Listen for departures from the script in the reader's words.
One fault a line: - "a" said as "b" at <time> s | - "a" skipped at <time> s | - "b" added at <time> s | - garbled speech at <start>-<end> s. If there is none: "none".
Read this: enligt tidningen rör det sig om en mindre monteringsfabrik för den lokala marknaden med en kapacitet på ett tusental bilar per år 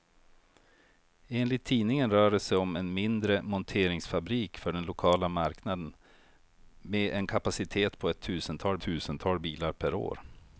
- "tusental" added at 8.8 s